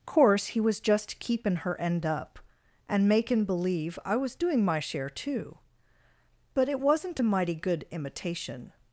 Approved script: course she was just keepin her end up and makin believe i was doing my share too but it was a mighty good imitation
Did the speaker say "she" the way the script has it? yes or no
no